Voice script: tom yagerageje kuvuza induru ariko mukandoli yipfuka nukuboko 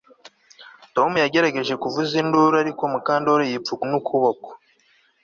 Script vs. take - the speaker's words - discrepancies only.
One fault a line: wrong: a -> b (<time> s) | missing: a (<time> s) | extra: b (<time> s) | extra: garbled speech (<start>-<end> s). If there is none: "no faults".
no faults